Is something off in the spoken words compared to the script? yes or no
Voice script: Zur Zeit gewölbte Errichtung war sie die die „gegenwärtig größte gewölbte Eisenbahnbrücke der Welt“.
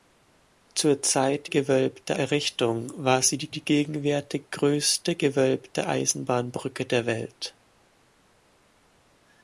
no